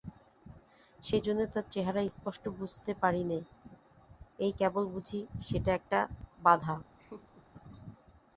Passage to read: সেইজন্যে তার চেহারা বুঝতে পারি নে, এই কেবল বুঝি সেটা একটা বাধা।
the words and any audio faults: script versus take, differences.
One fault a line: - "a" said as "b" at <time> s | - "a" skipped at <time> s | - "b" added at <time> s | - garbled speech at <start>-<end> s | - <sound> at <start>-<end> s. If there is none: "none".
- "স্পষ্ট" added at 2.1 s
- laugh at 7.0-7.5 s